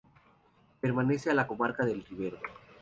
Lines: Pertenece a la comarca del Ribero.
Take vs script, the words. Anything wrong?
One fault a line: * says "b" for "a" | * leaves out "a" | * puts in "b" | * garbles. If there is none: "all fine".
all fine